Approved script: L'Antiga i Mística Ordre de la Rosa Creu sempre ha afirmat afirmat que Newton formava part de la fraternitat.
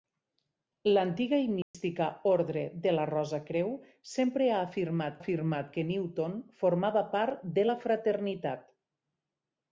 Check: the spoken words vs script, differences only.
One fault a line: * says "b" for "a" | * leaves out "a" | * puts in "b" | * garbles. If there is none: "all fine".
all fine